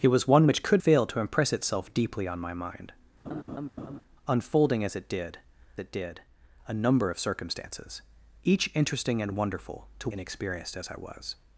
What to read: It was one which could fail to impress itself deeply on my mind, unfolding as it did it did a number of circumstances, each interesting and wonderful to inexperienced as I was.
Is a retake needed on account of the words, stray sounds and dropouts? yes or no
yes